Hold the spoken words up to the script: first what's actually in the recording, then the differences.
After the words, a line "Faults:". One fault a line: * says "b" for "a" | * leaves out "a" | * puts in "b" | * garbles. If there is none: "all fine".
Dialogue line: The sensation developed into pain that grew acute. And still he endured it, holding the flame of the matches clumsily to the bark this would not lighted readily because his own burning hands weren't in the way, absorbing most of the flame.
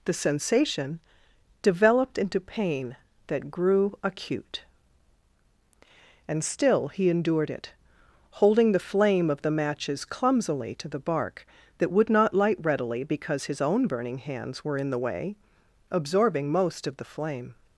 The sensation developed into pain that grew acute. And still he endured it, holding the flame of the matches clumsily to the bark that would not light readily because his own burning hands were in the way, absorbing most of the flame.
Faults:
* says "that" for "this"
* says "light" for "lighted"
* says "were" for "weren't"